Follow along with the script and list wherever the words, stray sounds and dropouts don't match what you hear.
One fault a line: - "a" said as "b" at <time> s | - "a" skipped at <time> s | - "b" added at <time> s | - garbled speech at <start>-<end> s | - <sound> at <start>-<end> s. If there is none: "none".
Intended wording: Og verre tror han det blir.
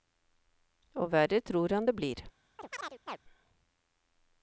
- chirp at 2.6-3.2 s